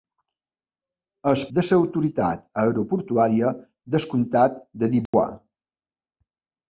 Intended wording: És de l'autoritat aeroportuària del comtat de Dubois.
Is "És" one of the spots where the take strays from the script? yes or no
no